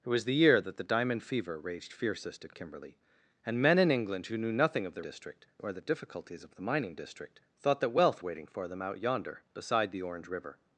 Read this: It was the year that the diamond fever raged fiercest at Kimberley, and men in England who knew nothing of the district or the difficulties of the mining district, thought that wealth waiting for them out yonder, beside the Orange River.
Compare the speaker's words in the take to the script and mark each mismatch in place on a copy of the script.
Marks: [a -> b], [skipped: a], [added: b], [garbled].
It was the year that the diamond fever raged fiercest at Kimberley, and men in England who knew nothing of the district or the difficulties of the mining district, thought that wealth waiting for them out yonder, beside the Orange River.